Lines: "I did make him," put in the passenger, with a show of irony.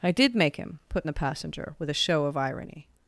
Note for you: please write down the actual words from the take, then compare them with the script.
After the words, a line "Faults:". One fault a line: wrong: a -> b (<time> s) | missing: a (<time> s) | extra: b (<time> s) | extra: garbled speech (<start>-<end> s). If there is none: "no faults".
"I did make him," put in the passenger, with a show of irony.
Faults:
no faults